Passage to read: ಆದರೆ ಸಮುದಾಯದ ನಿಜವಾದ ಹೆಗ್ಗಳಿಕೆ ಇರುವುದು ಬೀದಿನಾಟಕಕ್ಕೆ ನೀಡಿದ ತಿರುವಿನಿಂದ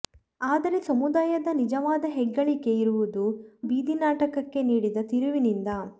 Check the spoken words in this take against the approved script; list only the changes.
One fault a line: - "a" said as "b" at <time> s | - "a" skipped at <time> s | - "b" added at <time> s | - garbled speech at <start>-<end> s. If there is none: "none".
none